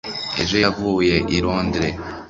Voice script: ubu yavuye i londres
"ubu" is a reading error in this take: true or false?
true